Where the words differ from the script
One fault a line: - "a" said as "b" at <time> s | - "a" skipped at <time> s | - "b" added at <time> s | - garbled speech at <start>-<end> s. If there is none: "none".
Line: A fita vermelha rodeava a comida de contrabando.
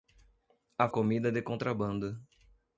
- "fita vermelha rodeava" skipped at 0.9 s